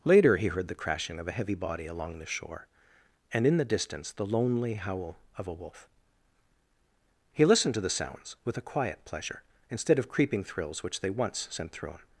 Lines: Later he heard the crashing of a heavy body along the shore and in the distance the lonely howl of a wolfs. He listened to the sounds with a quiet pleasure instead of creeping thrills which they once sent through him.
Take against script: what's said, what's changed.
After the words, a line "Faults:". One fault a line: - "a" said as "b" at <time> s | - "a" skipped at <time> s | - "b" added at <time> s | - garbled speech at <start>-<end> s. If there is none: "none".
Later he heard the crashing of a heavy body along the shore and in the distance the lonely howl of a wolf. He listened to the sounds with a quiet pleasure instead of creeping thrills which they once sent through him.
Faults:
- "wolfs" said as "wolf" at 5.5 s